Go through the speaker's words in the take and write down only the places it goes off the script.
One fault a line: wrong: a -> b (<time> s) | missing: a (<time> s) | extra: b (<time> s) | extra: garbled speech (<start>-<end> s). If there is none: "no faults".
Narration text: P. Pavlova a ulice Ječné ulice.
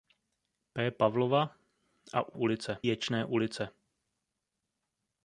no faults